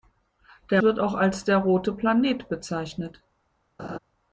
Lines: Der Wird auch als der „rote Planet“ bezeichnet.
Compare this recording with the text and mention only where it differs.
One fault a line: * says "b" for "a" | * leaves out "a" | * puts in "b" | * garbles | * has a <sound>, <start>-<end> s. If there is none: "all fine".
* has a laugh, 3.8-4.0 s